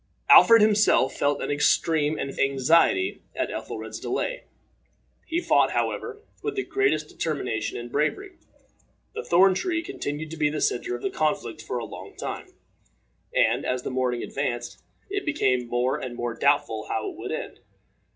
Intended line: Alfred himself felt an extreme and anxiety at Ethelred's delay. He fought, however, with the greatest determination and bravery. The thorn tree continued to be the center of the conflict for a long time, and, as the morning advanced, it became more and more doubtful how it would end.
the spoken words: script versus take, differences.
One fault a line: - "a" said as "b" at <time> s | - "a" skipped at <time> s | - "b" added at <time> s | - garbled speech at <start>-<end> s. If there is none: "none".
none